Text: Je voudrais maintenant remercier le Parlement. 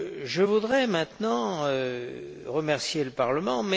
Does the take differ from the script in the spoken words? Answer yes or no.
no